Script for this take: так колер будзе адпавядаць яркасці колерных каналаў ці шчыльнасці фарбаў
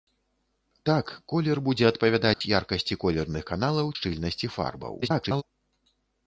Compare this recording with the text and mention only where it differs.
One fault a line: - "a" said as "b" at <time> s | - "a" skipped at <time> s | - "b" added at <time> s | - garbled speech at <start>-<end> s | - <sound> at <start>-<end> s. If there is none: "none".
- dropout at 2.3-2.4 s
- "ці" skipped at 3.9 s
- garbled speech at 5.0-5.4 s